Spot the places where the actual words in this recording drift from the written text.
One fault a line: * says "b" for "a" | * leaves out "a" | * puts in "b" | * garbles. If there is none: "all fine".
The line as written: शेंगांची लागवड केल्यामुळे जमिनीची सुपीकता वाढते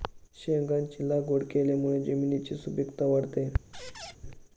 all fine